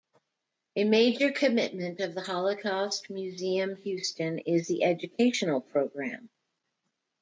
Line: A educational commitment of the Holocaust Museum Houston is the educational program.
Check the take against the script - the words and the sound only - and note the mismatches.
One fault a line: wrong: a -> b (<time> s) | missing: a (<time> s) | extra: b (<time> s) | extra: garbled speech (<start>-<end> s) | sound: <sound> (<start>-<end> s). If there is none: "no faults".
wrong: educational -> major (0.8 s)